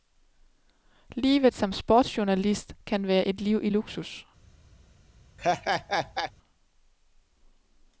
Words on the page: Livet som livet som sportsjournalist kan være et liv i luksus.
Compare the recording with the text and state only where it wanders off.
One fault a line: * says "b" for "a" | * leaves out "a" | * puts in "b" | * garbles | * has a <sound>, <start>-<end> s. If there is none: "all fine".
* leaves out "livet som"
* has a laugh, 5.4-6.3 s